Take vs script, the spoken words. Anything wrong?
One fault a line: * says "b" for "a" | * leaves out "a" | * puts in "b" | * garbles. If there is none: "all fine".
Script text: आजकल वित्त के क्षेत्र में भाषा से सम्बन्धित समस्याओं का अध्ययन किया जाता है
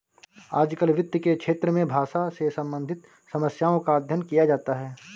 all fine